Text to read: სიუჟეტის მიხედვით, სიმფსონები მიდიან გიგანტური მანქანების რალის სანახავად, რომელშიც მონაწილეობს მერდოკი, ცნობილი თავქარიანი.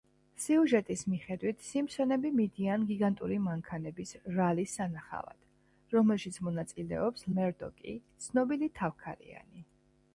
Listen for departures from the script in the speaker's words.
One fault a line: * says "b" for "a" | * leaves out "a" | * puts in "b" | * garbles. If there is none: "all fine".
all fine